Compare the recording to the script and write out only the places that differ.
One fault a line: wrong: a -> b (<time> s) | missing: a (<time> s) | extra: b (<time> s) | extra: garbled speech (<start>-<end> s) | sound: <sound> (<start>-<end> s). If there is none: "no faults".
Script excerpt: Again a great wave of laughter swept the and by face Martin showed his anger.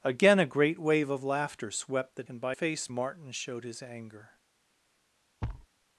sound: thud (5.4-5.7 s)